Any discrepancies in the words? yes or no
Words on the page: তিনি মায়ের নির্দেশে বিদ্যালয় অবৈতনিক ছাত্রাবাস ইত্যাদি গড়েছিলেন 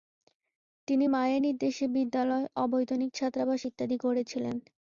no